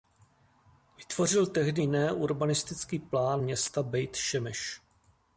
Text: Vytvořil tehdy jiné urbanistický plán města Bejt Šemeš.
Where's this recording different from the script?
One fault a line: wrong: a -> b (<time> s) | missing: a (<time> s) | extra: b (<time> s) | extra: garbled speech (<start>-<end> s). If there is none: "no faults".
no faults